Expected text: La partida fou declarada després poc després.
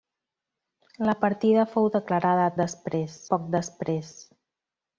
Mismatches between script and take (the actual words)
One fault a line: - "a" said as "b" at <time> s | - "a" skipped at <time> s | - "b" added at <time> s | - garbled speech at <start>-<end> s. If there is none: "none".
none